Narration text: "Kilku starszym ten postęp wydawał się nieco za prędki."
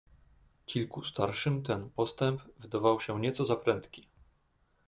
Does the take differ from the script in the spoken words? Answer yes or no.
no